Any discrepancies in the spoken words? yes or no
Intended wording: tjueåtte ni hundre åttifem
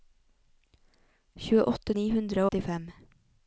no